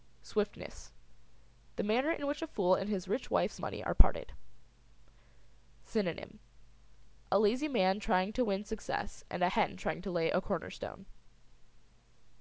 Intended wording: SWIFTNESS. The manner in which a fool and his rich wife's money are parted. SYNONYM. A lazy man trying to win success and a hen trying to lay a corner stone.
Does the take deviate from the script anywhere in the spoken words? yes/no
no